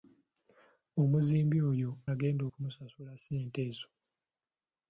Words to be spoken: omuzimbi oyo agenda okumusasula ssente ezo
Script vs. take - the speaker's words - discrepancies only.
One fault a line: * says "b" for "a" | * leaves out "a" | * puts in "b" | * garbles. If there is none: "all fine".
all fine